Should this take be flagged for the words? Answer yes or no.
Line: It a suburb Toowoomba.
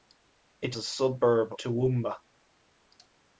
no